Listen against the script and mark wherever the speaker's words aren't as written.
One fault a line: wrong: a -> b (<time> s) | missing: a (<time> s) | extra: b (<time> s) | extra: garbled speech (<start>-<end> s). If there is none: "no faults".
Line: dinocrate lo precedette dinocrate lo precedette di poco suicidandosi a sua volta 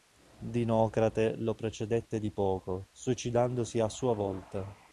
missing: dinocrate lo precedette (2.2 s)